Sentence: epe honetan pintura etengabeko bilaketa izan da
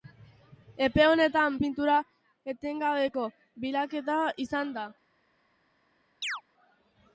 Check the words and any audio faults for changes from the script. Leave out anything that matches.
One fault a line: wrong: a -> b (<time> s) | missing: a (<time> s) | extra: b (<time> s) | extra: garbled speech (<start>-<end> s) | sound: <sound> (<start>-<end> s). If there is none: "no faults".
sound: chirp (6.2-6.4 s)